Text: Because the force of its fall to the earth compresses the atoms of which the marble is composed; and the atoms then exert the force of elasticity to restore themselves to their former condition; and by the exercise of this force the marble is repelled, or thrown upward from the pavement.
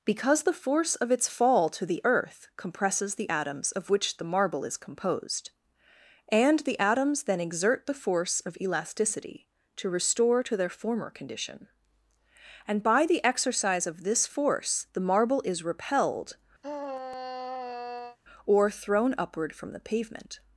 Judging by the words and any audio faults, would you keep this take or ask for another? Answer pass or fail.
fail